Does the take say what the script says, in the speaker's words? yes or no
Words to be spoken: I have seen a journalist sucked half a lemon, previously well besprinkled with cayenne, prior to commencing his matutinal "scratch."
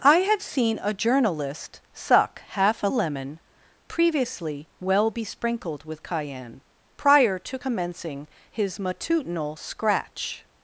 no